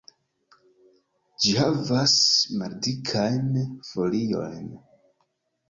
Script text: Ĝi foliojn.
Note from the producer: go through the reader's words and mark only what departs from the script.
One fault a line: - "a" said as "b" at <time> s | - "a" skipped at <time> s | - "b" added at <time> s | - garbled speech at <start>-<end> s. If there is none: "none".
- "havas maldikajn" added at 1.6 s